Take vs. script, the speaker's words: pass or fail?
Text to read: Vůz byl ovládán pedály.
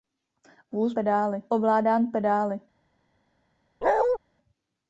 fail